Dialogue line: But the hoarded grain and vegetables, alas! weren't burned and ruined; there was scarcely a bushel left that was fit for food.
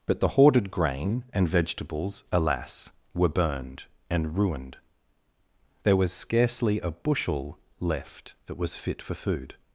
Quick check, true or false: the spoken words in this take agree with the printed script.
false